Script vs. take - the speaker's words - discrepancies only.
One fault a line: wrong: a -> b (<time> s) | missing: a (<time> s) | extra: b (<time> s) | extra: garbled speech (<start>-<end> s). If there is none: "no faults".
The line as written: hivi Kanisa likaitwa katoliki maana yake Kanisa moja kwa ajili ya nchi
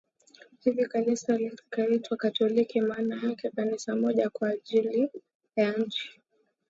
no faults